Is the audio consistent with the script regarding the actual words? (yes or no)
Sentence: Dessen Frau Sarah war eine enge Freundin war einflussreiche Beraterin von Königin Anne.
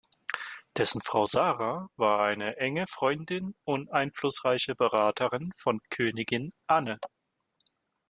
no